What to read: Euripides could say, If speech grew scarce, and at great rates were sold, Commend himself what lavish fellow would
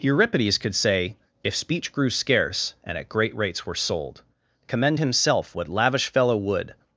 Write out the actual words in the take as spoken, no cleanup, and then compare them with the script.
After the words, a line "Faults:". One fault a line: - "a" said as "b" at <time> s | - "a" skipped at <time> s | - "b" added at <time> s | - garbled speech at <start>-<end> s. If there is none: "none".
Euripides could say, If speech grew scarce, and at great rates were sold, Commend himself what lavish fellow would
Faults:
none